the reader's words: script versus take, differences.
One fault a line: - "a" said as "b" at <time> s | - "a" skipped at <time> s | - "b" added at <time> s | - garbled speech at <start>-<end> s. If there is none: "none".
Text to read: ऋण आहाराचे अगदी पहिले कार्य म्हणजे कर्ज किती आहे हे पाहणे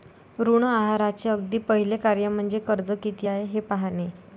none